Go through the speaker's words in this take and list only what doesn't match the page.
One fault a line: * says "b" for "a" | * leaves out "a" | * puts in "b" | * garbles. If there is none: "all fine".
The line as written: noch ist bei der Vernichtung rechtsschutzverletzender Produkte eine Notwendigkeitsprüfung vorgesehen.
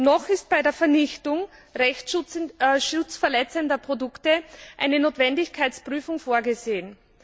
all fine